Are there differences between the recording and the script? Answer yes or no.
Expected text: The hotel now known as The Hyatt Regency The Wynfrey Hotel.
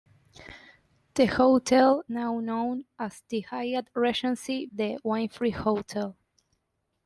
no